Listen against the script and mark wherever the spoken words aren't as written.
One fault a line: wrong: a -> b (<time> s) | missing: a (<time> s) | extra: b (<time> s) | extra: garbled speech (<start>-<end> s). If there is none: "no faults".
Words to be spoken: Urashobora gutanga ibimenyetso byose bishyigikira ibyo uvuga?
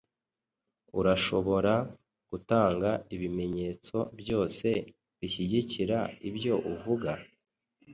no faults